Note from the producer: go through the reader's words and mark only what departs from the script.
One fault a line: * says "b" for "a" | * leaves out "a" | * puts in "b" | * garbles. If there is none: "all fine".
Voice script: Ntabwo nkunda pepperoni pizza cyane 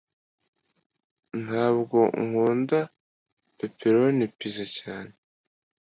all fine